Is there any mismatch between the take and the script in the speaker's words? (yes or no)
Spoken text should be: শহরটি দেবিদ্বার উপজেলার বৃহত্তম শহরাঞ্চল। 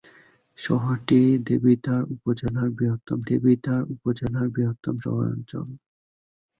yes